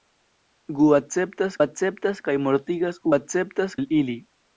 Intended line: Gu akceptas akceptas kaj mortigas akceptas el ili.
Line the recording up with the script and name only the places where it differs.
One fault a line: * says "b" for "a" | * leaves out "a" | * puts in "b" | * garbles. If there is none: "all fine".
all fine